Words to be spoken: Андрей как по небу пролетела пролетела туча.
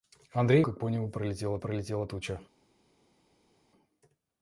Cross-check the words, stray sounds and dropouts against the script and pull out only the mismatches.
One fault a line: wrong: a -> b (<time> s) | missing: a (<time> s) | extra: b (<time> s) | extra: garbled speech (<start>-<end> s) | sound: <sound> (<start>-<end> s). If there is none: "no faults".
no faults